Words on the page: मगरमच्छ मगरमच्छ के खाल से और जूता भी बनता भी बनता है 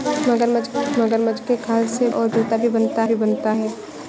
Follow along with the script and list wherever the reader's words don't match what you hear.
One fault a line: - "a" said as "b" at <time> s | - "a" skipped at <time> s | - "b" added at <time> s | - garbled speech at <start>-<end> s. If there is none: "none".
none